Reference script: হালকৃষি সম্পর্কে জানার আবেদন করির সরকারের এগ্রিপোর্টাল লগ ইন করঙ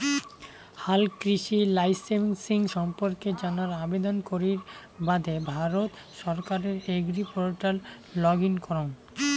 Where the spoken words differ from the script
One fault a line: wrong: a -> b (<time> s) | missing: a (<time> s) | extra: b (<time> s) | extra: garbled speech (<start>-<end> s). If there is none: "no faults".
extra: লাইসেমসিং (1.7 s)
extra: বাদে ভারত (5.0 s)